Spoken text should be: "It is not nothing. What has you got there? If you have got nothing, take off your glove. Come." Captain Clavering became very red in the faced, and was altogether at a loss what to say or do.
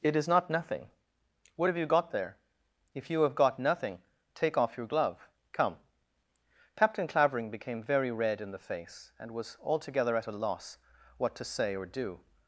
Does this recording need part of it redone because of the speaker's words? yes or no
yes